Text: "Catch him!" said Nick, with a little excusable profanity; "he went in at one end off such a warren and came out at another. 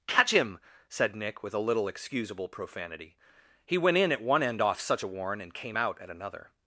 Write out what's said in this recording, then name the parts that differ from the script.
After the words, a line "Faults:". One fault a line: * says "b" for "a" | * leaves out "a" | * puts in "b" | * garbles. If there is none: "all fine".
"Catch him!" said Nick, with a little excusable profanity; "he went in at one end off such a warren and came out at another.
Faults:
all fine